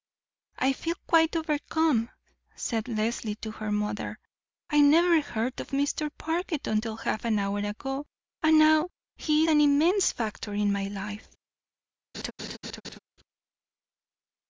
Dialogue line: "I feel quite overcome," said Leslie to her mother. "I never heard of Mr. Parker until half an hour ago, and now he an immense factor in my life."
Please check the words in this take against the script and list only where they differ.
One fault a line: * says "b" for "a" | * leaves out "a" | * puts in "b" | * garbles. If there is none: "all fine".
all fine